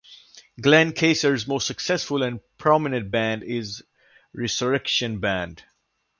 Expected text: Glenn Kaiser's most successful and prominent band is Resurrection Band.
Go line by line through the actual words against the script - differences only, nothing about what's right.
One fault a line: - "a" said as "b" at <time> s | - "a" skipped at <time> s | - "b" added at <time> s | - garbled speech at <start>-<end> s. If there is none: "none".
none